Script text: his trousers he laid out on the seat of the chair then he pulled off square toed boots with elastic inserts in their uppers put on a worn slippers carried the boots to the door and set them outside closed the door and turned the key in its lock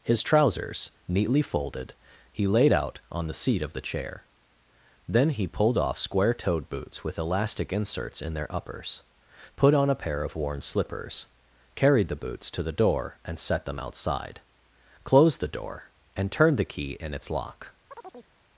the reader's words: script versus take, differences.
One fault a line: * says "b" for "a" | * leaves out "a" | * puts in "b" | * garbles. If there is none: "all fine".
* puts in "neatly folded"
* puts in "pair of"